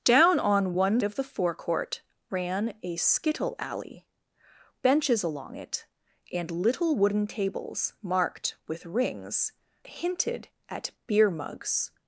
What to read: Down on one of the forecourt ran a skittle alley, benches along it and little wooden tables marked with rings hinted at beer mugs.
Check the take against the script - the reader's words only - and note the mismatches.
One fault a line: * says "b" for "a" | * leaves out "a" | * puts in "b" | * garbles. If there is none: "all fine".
all fine